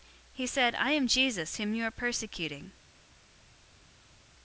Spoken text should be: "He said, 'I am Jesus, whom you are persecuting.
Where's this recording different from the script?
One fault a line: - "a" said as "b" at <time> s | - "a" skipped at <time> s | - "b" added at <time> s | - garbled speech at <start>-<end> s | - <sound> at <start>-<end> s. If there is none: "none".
none